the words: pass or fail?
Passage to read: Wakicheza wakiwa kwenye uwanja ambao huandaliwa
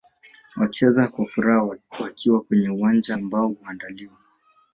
fail